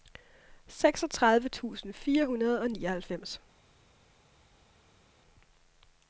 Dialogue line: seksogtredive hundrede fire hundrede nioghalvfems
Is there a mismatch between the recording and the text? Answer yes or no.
yes